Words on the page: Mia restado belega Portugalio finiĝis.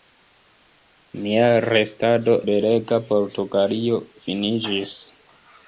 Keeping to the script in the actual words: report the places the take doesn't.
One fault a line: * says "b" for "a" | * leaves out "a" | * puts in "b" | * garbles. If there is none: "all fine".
all fine